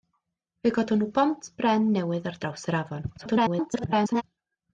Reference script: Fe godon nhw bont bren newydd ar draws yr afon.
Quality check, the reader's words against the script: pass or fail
fail